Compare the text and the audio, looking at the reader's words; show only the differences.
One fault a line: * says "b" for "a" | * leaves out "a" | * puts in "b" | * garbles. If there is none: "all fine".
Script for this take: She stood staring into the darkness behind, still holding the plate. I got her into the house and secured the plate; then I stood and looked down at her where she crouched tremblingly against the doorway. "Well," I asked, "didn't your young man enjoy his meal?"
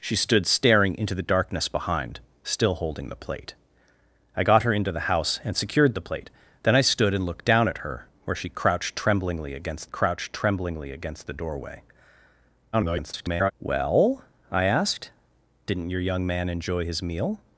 * puts in "crouched tremblingly against"
* garbles